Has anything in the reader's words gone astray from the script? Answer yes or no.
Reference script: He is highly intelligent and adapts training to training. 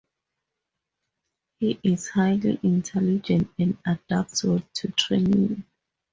yes